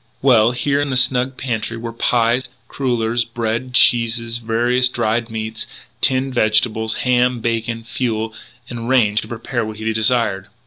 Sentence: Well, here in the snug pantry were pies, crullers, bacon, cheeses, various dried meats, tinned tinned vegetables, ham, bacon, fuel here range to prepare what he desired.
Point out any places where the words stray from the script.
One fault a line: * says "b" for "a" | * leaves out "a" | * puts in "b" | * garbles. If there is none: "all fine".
* says "bread" for "bacon"
* leaves out "tinned"
* says "and" for "here"